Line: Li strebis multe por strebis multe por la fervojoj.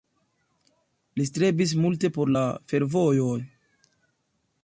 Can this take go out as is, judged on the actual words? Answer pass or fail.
fail